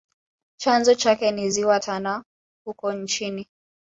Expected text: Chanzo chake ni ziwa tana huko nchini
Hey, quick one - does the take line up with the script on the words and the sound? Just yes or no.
yes